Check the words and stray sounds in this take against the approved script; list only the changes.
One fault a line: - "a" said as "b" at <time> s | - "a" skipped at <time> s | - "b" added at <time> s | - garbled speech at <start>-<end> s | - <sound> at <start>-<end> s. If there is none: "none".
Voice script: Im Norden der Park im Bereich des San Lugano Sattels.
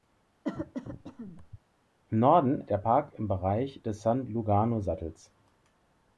- cough at 0.4-1.6 s